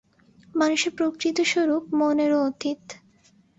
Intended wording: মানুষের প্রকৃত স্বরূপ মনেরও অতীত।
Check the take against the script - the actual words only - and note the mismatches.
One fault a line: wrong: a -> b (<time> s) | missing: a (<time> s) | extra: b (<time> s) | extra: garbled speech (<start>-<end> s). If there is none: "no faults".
no faults